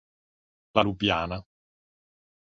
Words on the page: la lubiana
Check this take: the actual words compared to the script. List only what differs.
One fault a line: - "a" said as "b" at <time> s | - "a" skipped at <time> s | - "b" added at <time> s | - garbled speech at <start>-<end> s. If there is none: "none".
none